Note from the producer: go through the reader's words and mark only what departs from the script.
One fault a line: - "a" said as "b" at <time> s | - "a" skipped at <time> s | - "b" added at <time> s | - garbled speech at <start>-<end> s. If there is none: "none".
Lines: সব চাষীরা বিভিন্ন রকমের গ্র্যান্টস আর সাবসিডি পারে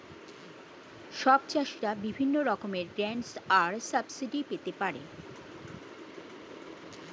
- "পেতে" added at 4.5 s